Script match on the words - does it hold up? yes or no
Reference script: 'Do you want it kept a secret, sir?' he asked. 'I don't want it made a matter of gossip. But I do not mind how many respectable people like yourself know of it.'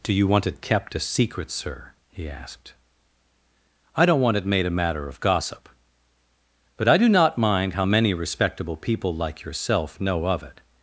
yes